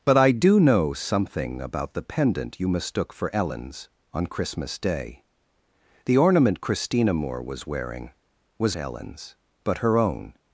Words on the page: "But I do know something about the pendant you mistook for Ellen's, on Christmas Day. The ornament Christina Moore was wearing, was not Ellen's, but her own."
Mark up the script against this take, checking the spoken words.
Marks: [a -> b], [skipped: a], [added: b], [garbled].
"But I do know something about the pendant you mistook for Ellen's, on Christmas Day. The ornament Christina Moore was wearing, was [skipped: not] Ellen's, but her own."